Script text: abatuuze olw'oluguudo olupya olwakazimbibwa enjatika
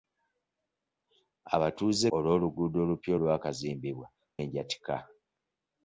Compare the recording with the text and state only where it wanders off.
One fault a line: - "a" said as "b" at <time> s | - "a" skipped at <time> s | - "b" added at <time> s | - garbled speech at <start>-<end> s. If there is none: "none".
none